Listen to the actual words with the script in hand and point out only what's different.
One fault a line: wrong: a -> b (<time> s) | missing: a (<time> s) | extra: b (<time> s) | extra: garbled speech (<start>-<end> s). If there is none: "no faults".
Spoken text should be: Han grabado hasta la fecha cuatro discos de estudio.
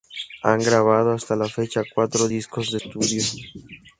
no faults